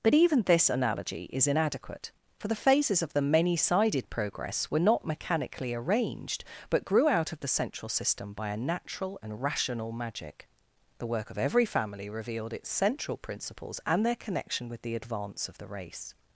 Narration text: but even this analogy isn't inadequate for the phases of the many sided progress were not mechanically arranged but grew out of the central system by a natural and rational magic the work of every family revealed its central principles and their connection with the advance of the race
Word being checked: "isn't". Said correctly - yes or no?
no